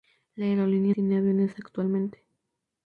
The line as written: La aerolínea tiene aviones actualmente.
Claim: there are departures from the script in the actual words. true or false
false